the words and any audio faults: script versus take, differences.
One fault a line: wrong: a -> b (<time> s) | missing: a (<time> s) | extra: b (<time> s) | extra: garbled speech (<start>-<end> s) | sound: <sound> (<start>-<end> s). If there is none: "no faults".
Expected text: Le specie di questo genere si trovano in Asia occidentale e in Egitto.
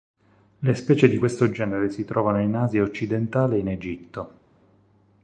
no faults